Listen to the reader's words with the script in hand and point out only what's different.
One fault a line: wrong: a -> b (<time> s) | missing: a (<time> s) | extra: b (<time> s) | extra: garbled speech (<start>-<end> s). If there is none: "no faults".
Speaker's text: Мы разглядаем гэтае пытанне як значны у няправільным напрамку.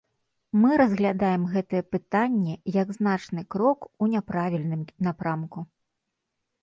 extra: крок (3.6 s)